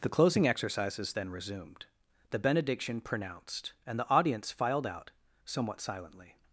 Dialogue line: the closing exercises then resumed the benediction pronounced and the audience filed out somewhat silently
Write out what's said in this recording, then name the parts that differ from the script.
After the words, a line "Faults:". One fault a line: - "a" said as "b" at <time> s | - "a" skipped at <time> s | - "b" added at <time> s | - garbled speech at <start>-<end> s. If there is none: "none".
the closing exercises then resumed the benediction pronounced and the audience filed out somewhat silently
Faults:
none